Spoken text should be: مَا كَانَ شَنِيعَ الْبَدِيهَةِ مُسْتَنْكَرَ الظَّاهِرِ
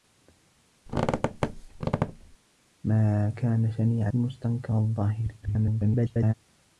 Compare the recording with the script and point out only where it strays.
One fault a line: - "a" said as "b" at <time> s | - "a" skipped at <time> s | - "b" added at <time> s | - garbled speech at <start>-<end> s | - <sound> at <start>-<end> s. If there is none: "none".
- squeak at 0.9-2.4 s
- "الْبَدِيهَةِ" skipped at 4.1 s
- garbled speech at 5.4-6.3 s